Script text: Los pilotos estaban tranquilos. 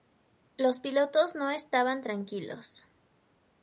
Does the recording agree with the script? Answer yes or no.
no